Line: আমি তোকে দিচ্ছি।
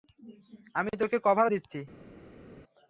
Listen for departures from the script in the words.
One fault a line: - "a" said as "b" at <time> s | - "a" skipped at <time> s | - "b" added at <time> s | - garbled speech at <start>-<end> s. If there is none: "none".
- "কভার" added at 1.2 s